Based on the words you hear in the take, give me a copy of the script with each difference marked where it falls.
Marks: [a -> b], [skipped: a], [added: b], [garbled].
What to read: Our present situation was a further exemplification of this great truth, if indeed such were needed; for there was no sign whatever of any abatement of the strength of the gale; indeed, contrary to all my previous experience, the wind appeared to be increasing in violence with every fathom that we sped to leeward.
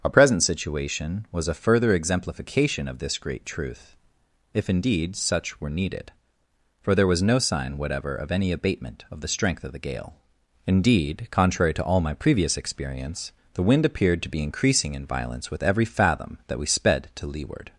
Our present situation was a further exemplification of this great truth, if indeed such were needed; for there was no sign whatever of any abatement of the strength of the gale; indeed, contrary to all my previous experience, the wind appeared to be increasing in violence with every fathom that we sped to leeward.